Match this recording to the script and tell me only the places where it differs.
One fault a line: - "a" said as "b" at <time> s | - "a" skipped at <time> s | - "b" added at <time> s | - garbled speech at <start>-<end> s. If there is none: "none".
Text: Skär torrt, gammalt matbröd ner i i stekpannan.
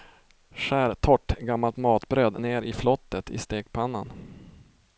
- "flottet" added at 2.7 s